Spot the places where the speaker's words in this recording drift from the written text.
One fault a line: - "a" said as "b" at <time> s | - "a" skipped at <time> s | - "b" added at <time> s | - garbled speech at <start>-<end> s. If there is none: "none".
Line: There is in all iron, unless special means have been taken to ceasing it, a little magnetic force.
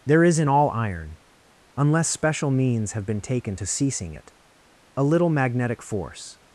none